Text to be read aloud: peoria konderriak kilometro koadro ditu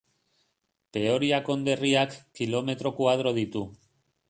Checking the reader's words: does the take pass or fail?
pass